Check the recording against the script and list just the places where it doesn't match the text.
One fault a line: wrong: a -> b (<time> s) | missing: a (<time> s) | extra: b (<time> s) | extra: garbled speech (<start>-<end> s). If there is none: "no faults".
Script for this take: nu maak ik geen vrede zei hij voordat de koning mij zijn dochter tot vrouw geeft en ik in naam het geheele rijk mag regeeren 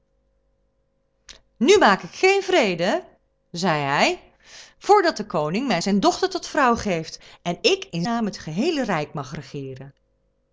no faults